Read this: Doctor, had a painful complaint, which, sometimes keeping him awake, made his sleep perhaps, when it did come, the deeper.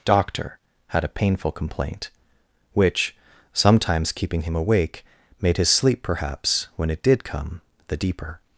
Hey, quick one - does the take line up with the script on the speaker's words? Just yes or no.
yes